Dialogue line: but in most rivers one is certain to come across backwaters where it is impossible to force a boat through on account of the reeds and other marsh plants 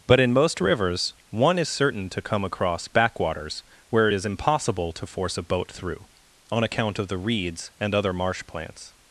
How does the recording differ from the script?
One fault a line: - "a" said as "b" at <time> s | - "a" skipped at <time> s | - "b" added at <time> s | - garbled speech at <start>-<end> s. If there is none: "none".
none